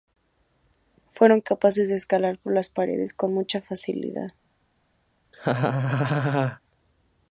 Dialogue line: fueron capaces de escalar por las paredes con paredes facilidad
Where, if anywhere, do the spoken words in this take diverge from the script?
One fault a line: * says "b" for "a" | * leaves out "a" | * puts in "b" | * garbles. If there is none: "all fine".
* says "mucha" for "paredes"